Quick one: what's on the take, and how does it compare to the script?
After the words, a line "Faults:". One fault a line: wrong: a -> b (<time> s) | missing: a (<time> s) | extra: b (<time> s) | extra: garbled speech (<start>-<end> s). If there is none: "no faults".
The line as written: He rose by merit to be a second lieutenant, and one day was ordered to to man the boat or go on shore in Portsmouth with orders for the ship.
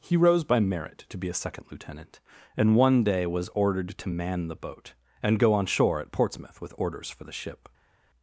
He rose by merit to be a second lieutenant, and one day was ordered to man the boat and go on shore at Portsmouth with orders for the ship.
Faults:
missing: to (4.1 s)
wrong: or -> and (5.2 s)
wrong: in -> at (6.0 s)